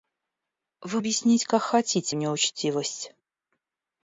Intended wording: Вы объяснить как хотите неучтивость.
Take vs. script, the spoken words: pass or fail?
pass